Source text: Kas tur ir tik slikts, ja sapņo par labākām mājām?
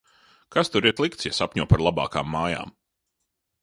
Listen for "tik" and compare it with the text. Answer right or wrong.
wrong